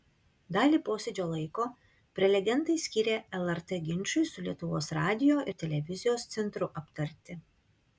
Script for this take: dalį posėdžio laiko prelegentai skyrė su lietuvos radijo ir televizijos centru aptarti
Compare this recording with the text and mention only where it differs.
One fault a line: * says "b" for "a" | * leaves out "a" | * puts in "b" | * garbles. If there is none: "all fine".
* puts in "lrt ginčui"